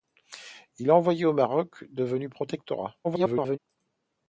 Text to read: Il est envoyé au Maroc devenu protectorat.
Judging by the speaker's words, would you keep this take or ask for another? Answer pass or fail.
fail